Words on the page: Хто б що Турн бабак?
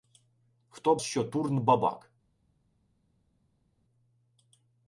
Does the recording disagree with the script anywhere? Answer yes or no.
no